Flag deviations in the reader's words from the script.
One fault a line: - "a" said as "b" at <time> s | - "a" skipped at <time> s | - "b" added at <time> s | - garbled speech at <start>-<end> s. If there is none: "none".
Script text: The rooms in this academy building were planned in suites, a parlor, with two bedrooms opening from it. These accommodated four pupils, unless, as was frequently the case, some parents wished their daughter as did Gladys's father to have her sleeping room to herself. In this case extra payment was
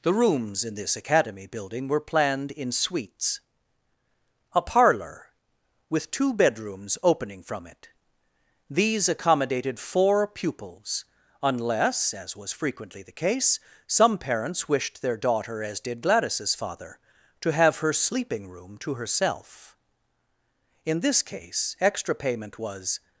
none